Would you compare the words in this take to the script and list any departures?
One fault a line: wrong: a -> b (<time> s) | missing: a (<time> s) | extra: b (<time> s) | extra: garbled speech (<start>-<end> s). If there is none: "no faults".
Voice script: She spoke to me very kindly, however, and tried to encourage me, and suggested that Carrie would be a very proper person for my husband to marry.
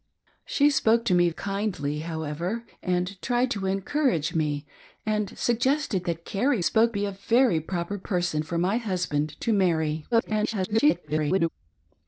missing: very (1.3 s)
wrong: would -> spoke (6.6 s)
extra: garbled speech (10.1-11.5 s)